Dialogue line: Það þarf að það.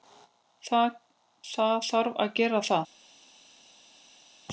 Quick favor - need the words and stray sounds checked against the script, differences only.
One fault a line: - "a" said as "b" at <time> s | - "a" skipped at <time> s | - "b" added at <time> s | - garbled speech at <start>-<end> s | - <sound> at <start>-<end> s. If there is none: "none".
- "gera" added at 2.4 s